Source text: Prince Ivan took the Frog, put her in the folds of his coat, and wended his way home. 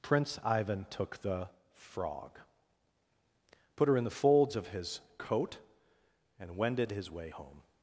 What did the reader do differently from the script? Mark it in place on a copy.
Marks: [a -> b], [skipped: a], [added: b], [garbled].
Prince Ivan took the Frog, put her in the folds of his coat, and wended his way home.